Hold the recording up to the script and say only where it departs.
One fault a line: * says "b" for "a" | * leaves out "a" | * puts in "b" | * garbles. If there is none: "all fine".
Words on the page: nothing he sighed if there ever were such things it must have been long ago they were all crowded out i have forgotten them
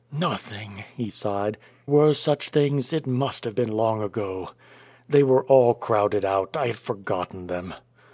* leaves out "if there ever"